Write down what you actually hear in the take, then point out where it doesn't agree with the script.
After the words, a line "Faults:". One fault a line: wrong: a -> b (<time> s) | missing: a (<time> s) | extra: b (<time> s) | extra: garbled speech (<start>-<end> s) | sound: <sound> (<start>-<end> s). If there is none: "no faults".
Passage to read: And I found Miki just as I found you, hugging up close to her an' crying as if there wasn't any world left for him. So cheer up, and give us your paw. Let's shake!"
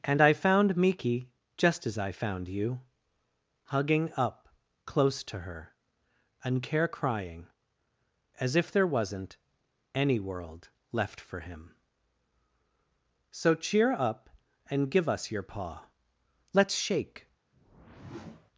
And I found Miki just as I found you, hugging up close to her and care' crying as if there wasn't any world left for him. So cheer up, and give us your paw. Let's shake!"
Faults:
wrong: an -> and care (6.4 s)
sound: whoosh (17.5-18.5 s)